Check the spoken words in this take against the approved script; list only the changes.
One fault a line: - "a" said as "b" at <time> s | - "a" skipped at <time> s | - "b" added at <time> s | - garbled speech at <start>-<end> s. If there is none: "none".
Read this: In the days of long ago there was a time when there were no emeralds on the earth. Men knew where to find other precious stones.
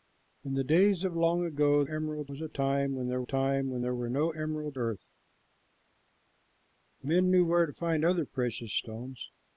- "there" said as "emeralds" at 1.9 s
- "time when there" added at 3.2 s
- "on the" skipped at 4.8 s